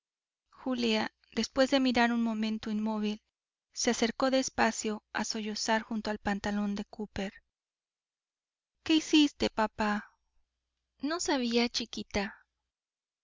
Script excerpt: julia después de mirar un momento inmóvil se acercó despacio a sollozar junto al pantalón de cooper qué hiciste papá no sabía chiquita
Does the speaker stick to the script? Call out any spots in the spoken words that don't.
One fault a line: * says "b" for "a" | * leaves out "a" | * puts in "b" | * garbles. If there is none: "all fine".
all fine